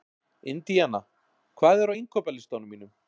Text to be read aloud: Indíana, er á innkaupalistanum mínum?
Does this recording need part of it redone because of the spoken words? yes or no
yes